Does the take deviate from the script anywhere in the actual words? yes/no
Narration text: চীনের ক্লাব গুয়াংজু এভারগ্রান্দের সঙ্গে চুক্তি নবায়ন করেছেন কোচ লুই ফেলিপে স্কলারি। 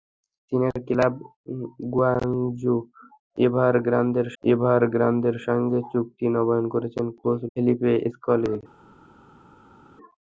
yes